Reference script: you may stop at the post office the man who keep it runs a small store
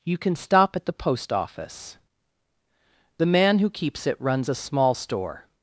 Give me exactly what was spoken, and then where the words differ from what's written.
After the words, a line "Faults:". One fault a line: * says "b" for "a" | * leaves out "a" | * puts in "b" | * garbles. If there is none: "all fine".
you can stop at the post office the man who keeps it runs a small store
Faults:
* says "can" for "may"
* says "keeps" for "keep"